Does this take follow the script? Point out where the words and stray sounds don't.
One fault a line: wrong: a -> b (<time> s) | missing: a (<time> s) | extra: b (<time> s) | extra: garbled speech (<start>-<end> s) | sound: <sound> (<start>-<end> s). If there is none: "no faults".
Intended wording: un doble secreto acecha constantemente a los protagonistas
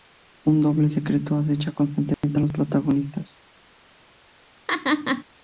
sound: dropout (2.1-2.2 s)
sound: laugh (4.7-5.2 s)